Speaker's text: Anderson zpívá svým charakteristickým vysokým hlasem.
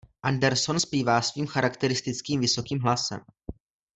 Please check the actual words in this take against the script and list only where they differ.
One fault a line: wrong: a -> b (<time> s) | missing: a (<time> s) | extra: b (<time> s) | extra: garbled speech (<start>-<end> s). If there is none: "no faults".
no faults